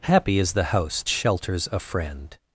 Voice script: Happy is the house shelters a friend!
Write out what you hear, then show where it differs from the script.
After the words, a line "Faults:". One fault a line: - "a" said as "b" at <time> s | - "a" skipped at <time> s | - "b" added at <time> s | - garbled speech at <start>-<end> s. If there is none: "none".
Happy is the house shelters a friend!
Faults:
none